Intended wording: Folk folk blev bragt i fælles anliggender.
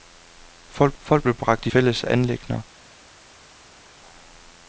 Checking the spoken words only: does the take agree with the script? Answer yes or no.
yes